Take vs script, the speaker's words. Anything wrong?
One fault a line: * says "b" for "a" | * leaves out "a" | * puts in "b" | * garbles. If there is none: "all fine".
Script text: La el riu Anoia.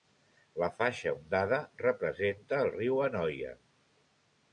* puts in "faixa ondada representa"